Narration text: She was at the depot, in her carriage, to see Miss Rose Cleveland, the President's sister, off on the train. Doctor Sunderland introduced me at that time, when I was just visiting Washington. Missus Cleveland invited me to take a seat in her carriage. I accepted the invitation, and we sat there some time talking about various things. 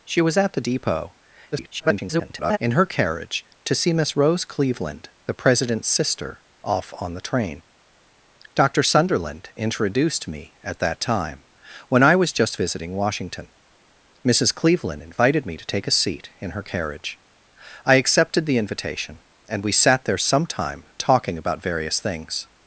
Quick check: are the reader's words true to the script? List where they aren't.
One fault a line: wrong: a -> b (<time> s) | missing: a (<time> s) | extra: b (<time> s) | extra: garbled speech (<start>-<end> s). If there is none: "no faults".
extra: garbled speech (1.5-2.6 s)